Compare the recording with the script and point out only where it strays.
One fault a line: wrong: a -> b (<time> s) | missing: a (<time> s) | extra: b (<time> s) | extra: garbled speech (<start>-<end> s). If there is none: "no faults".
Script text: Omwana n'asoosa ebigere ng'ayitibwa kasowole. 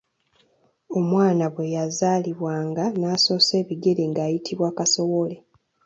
extra: bwe yazaalibwanga (1.5 s)